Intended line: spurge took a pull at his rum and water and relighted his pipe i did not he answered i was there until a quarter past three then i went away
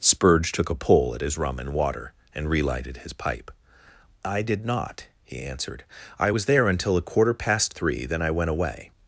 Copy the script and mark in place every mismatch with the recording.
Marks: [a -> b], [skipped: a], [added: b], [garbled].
spurge took a pull at his rum and water and relighted his pipe i did not he answered i was there until a quarter past three then i went away